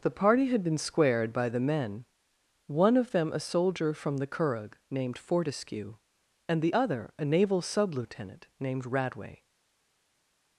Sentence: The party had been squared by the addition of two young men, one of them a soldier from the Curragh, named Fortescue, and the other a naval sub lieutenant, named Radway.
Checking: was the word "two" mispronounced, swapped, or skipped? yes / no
yes